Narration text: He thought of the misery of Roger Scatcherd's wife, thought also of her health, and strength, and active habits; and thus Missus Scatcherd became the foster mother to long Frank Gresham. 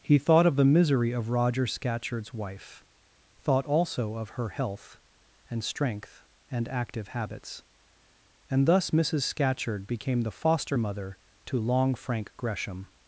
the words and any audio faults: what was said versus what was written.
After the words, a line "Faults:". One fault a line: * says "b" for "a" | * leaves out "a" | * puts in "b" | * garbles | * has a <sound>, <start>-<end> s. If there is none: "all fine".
He thought of the misery of Roger Scatcherd's wife, thought also of her health, and strength, and active habits; and thus Missus Scatcherd became the foster mother to long Frank Gresham.
Faults:
all fine